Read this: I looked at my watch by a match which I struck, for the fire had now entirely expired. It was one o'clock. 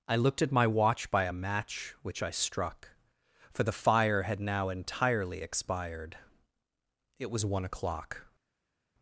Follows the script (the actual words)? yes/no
yes